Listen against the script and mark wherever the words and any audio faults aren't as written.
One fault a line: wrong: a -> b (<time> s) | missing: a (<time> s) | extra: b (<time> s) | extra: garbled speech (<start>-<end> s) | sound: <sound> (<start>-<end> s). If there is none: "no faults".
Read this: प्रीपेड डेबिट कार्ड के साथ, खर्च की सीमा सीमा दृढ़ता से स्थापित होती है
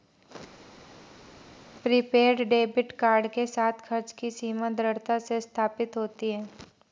missing: सीमा (4.7 s)